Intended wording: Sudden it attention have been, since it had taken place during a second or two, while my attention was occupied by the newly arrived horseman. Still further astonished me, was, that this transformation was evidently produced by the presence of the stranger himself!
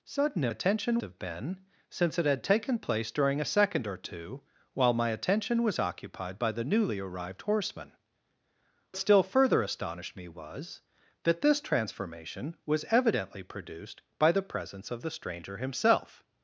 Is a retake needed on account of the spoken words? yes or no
no